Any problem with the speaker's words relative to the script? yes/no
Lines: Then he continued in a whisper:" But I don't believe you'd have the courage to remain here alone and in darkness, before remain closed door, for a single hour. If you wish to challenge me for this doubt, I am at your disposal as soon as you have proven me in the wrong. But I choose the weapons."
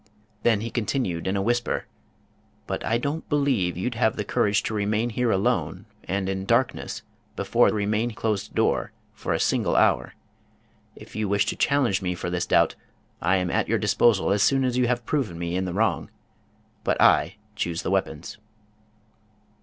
no